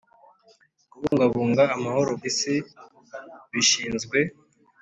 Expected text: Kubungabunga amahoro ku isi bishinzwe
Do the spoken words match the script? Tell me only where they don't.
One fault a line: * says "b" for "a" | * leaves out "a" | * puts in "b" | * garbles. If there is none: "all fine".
* leaves out "ku"